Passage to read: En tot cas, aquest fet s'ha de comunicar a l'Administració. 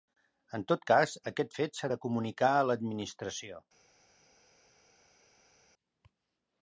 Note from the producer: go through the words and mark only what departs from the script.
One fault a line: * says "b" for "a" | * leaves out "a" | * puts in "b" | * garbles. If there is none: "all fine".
all fine